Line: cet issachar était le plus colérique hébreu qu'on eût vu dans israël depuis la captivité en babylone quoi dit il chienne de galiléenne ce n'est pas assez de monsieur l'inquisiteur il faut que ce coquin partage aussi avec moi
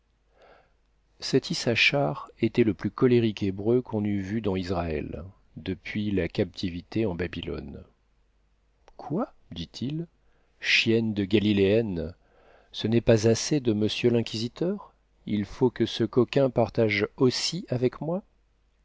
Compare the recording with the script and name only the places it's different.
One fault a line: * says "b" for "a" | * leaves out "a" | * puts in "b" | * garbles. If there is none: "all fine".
all fine